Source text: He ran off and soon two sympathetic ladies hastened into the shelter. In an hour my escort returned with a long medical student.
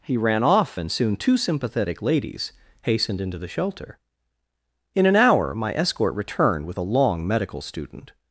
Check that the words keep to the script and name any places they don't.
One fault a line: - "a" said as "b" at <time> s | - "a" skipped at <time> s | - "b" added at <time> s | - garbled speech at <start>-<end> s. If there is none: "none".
none